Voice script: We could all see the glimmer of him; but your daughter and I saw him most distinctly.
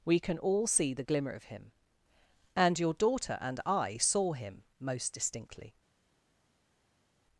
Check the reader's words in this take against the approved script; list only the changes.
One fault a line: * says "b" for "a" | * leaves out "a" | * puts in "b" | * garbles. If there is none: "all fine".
* says "can" for "could"
* says "and" for "but"